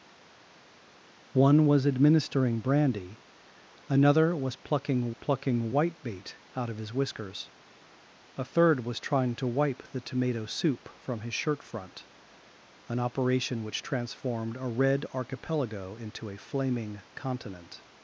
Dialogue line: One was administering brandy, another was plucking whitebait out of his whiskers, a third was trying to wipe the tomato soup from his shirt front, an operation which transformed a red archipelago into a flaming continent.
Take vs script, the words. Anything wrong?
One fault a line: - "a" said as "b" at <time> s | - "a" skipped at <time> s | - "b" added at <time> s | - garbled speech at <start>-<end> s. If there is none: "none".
- "plucking" added at 5.1 s